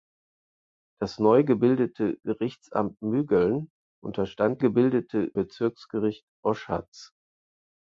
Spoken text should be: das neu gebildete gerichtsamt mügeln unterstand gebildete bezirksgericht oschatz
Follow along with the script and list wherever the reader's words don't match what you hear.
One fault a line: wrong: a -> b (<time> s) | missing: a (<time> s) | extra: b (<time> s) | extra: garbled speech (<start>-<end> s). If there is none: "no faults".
no faults